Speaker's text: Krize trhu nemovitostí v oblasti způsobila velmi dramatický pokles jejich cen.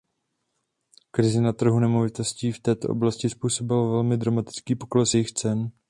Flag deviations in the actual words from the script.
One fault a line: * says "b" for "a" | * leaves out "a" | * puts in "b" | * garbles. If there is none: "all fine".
* puts in "na"
* puts in "této"